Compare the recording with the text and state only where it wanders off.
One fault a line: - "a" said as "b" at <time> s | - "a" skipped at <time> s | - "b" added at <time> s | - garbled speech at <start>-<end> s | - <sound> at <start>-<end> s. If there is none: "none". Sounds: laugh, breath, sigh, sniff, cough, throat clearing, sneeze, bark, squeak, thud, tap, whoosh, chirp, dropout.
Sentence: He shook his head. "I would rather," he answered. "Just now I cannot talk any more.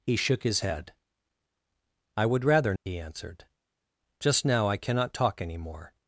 none